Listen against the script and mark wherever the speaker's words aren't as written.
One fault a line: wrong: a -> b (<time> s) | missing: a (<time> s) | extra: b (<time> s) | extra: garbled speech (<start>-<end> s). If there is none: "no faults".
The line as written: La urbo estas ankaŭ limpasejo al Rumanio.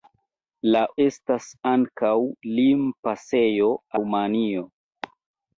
missing: urbo (0.8 s)
missing: al (3.8 s)